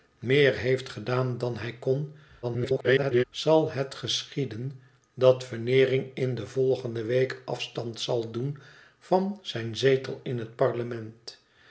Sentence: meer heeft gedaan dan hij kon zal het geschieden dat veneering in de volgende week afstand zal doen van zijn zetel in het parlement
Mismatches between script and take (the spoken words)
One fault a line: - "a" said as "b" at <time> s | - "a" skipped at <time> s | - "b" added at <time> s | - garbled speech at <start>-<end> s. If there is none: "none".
- garbled speech at 2.4-3.2 s